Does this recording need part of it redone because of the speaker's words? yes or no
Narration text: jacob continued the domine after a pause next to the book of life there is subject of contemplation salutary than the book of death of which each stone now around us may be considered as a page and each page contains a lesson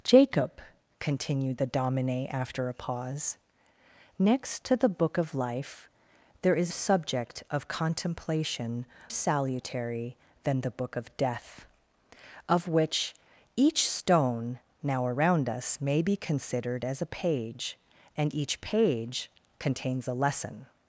no